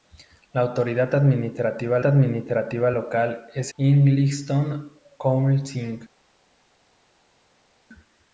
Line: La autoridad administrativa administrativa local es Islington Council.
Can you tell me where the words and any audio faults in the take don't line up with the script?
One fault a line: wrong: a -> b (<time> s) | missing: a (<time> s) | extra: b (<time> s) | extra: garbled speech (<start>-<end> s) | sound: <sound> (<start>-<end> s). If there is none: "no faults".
no faults